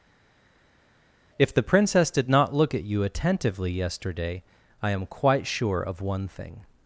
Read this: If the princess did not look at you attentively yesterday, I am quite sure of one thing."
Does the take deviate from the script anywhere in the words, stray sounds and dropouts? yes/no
no